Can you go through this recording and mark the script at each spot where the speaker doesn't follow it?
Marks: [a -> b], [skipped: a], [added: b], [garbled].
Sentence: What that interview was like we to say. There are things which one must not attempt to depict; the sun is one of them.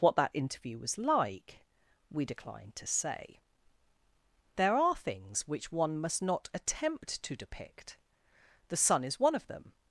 What that interview was like we [added: decline] to say. There are things which one must not attempt to depict; the sun is one of them.